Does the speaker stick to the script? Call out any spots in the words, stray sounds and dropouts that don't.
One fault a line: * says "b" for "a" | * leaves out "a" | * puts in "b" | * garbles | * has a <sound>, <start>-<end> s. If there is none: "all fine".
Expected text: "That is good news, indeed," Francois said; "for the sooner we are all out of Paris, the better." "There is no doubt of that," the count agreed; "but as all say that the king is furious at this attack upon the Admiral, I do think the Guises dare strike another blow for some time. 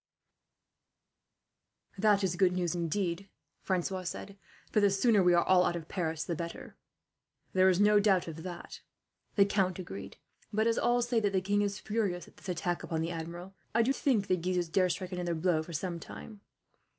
all fine